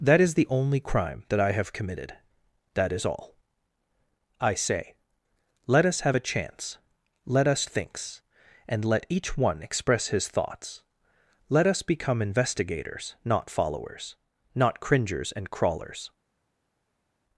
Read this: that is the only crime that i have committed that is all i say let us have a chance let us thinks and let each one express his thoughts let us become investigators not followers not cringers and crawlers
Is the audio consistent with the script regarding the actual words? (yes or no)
yes